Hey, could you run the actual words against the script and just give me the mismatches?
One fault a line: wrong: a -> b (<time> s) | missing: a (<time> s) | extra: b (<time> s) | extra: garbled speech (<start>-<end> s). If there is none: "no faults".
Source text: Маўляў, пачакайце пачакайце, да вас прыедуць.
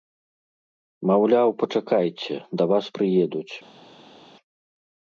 missing: пачакайце (2.4 s)